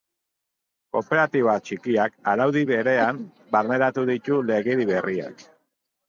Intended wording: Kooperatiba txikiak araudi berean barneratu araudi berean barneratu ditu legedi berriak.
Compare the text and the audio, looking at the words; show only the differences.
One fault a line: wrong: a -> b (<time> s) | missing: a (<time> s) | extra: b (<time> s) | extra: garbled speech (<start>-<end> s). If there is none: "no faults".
missing: araudi berean barneratu (4.1 s)